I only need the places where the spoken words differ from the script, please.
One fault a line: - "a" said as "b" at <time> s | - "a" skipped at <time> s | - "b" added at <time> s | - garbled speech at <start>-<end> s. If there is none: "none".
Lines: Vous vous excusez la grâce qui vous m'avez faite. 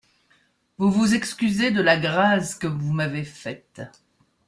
- "de" added at 1.7 s
- "qui" said as "que" at 2.5 s